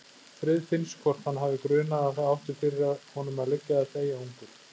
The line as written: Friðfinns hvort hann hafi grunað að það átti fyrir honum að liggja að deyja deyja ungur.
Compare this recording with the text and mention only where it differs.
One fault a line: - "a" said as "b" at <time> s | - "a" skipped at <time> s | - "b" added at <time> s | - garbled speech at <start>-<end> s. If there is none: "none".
- "deyja" skipped at 4.2 s